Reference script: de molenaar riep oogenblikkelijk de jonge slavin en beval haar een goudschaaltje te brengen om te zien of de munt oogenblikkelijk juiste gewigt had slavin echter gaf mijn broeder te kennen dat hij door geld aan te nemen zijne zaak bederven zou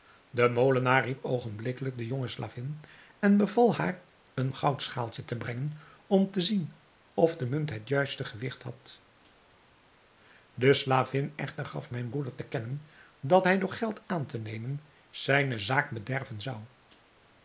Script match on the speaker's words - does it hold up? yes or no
no